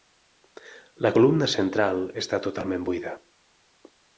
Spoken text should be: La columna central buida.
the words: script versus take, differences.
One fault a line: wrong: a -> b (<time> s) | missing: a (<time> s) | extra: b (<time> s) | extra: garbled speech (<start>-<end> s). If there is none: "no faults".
extra: està totalment (2.2 s)